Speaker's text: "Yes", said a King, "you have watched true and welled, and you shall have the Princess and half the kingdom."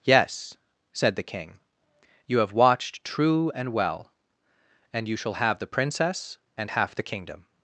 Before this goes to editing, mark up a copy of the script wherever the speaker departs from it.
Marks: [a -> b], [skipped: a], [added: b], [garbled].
"Yes", said [a -> the] King, "you have watched true and [welled, -> well] and you shall have the Princess and half the kingdom."